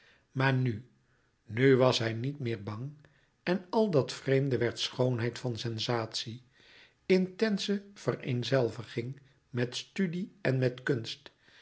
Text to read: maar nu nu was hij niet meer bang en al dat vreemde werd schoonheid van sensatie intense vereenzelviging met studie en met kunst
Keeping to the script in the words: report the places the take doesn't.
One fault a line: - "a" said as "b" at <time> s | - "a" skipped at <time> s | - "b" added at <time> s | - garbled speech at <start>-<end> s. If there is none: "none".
none